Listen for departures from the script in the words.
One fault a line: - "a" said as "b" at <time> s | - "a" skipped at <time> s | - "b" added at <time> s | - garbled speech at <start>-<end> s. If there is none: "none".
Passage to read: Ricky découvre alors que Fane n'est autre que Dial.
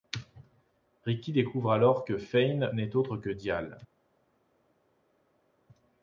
none